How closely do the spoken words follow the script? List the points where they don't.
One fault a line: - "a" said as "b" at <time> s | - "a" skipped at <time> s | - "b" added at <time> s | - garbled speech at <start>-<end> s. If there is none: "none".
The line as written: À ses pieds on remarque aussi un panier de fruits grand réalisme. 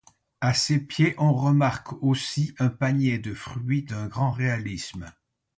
- "d'un" added at 3.8 s